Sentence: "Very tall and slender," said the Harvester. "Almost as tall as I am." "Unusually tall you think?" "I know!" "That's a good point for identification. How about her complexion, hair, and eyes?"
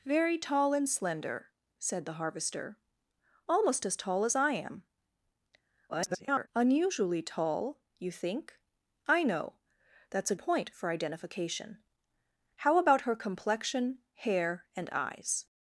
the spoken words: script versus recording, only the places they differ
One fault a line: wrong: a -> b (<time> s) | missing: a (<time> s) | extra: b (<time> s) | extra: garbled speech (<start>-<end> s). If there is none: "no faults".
extra: garbled speech (5.9-6.5 s)
missing: good (10.4 s)